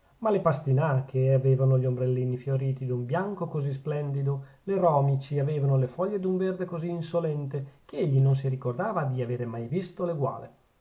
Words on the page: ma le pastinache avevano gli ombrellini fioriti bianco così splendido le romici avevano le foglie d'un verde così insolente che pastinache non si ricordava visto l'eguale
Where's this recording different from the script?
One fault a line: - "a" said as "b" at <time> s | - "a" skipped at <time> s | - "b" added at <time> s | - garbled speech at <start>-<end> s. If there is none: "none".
- "d'un" added at 2.9 s
- "pastinache" said as "egli" at 8.0 s
- "di avere mai" added at 9.0 s